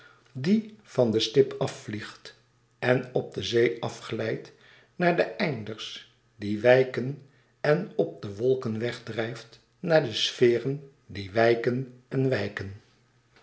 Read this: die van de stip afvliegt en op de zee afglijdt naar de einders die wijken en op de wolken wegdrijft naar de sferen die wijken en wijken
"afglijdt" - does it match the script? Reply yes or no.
yes